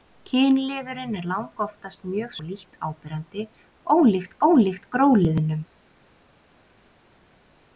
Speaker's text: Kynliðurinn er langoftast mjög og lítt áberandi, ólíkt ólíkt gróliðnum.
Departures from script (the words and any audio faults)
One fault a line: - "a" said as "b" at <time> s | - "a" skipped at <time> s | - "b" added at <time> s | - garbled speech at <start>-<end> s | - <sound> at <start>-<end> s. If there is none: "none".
none